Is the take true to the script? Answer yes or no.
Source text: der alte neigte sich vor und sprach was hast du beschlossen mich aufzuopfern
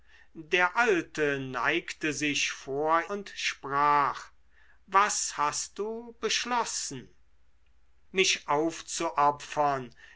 yes